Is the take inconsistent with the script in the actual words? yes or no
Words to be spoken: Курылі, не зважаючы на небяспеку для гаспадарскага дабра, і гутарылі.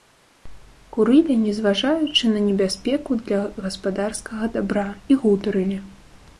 no